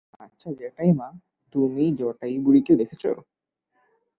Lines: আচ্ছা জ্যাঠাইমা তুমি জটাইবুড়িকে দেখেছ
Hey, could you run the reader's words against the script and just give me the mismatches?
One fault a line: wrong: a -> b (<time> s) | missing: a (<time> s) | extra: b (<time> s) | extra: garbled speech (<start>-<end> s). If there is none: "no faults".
no faults